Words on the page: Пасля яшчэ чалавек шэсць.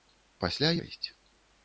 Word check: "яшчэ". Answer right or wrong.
wrong